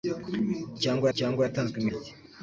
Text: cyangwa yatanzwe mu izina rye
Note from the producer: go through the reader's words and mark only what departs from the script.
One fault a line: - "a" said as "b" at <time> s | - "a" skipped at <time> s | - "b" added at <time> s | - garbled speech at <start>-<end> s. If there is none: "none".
- "cyangwa" added at 1.2 s
- "izina" skipped at 1.9 s